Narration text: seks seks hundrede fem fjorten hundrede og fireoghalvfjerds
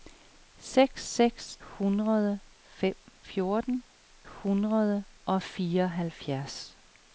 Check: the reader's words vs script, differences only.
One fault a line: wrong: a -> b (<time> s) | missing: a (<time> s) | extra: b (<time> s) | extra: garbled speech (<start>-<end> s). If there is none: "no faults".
no faults